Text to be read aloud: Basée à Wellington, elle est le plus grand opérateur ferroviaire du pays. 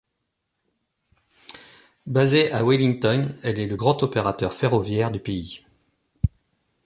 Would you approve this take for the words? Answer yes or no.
no